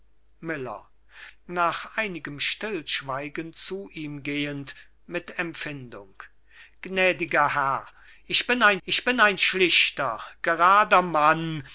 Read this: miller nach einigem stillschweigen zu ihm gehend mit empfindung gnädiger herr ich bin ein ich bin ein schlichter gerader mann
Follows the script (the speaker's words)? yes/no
yes